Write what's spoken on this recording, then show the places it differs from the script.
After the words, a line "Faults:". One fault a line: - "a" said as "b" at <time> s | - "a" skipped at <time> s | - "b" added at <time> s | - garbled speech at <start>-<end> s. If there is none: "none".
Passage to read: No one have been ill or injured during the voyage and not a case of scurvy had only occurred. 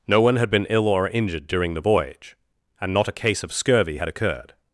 No one had been ill or injured during the voyage and not a case of scurvy had occurred.
Faults:
- "have" said as "had" at 0.4 s
- "only" skipped at 4.1 s